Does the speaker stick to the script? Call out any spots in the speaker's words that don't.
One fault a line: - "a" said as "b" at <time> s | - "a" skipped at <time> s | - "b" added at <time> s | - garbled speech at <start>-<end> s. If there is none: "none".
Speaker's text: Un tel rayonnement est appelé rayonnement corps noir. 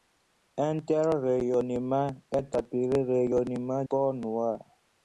none